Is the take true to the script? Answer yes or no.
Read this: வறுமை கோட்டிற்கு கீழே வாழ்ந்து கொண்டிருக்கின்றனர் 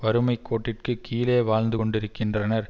yes